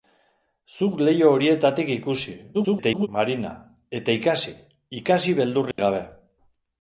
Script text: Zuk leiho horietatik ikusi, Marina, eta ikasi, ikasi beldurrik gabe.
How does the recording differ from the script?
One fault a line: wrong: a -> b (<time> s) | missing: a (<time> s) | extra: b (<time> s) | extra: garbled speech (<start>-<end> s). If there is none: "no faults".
extra: garbled speech (2.5-3.1 s)